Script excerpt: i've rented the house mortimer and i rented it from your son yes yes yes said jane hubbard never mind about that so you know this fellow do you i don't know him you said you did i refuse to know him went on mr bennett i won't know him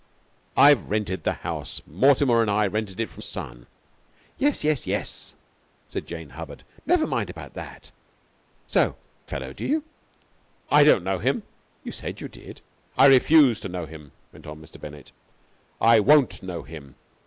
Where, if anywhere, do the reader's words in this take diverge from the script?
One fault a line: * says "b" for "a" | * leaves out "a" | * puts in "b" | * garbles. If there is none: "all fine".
* leaves out "your"
* leaves out "you know this"